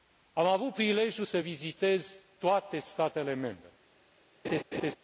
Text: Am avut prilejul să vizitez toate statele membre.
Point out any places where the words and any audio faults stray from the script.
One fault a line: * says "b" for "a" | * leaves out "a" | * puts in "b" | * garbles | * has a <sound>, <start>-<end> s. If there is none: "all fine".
* has a laugh, 4.4-5.0 s